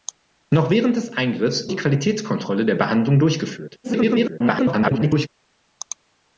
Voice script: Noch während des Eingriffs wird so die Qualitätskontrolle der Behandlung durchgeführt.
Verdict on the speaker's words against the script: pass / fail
fail